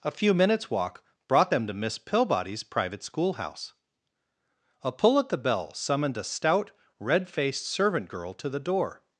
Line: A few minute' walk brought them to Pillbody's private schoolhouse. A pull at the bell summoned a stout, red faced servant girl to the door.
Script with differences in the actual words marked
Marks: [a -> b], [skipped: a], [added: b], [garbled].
A few [minute' -> minutes] walk brought them to [added: Miss] Pillbody's private schoolhouse. A pull at the bell summoned a stout, red faced servant girl to the door.